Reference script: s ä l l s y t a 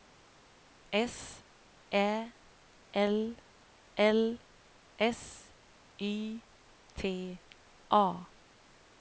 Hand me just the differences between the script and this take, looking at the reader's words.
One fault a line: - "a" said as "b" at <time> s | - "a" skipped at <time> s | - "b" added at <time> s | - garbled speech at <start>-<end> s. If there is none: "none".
none